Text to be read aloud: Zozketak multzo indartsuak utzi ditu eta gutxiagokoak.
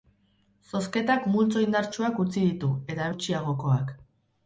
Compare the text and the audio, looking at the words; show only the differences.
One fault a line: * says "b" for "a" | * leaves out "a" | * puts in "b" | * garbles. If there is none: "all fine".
all fine